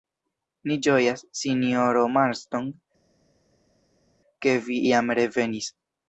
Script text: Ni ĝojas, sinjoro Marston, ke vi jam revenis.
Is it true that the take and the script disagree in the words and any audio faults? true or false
false